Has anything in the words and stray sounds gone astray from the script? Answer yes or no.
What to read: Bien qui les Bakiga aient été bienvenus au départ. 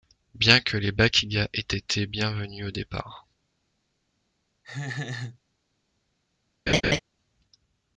yes